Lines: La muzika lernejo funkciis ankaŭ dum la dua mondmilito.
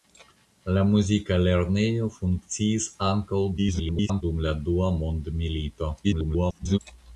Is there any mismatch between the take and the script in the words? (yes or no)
yes